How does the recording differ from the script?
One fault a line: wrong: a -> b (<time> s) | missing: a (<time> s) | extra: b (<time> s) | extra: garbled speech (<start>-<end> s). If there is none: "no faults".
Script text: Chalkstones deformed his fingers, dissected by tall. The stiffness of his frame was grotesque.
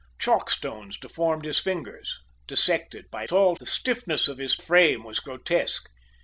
no faults